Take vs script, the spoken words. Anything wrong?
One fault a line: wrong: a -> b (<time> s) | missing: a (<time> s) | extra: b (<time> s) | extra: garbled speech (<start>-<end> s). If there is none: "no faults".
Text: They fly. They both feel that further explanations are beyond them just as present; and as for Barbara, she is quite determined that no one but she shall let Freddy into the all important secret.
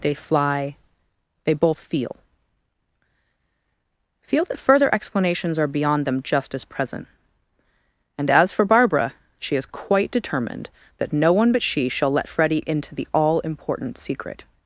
extra: feel (4.2 s)